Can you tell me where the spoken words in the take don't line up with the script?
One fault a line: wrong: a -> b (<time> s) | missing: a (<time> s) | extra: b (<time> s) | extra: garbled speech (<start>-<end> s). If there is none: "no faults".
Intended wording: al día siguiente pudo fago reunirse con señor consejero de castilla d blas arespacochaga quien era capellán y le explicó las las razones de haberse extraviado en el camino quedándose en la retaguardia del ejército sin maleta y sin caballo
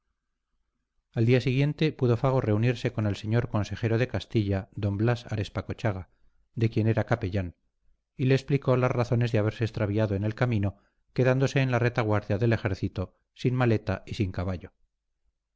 extra: el (3.1 s)
extra: de (6.5 s)
missing: las (8.9 s)